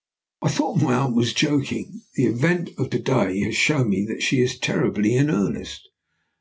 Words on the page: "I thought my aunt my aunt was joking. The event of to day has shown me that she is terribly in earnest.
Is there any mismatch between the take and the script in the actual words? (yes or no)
yes